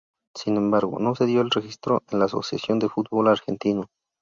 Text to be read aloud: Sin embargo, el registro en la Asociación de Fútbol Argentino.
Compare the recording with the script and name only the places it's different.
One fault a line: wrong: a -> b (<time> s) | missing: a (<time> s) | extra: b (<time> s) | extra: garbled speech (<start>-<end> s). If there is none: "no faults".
extra: no se dio (1.0 s)